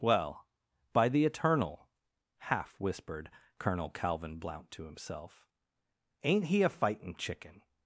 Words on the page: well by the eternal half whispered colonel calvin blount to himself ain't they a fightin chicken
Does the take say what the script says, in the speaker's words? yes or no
no